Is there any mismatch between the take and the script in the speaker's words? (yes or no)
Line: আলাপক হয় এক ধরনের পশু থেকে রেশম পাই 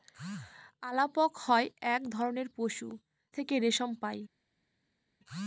no